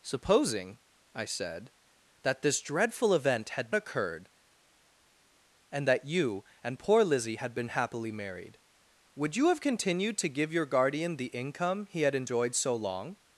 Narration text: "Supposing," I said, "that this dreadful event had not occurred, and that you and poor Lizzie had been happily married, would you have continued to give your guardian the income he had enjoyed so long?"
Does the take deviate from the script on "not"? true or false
true